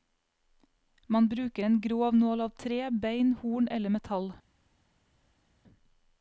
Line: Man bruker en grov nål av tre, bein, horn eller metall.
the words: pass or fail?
pass